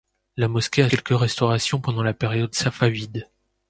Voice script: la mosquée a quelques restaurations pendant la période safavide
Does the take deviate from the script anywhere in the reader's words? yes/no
no